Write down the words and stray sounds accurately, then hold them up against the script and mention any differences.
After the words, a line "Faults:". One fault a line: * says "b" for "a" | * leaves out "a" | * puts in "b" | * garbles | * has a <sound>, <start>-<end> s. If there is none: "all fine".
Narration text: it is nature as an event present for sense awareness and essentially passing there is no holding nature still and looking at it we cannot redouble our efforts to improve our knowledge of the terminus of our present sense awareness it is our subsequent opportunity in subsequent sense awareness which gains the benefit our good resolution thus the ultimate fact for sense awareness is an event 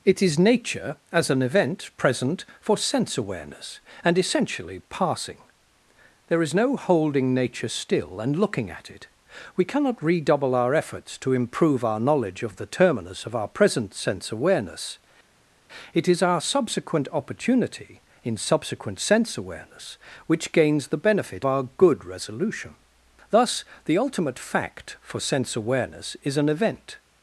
it is nature as an event present for sense awareness and essentially passing there is no holding nature still and looking at it we cannot redouble our efforts to improve our knowledge of the terminus of our present sense awareness it is our subsequent opportunity in subsequent sense awareness which gains the benefit our good resolution thus the ultimate fact for sense awareness is an event
Faults:
all fine